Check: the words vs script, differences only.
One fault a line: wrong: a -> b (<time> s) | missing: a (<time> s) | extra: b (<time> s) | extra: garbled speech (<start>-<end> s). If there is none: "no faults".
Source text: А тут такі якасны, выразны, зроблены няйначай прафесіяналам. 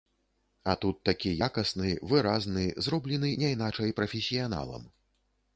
no faults